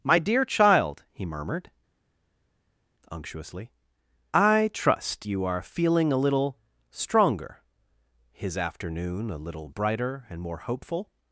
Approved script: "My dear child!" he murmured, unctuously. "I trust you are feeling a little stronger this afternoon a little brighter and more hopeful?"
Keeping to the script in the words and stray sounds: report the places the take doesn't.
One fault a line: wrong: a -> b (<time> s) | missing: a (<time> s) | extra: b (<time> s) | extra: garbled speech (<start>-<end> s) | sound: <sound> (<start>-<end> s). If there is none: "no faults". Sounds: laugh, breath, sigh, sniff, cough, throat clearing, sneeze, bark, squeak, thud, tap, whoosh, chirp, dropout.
wrong: this -> his (8.3 s)